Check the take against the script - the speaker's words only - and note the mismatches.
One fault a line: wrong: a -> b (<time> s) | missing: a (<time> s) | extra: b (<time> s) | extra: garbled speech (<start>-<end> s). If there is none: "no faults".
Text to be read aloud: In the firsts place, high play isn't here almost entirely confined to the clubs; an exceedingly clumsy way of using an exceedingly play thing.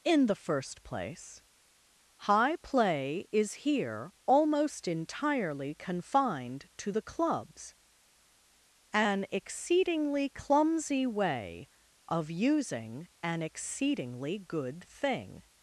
wrong: firsts -> first (0.3 s)
wrong: isn't -> is (3.3 s)
wrong: play -> good (14.4 s)